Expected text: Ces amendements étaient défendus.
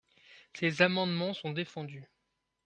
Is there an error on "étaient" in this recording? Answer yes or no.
yes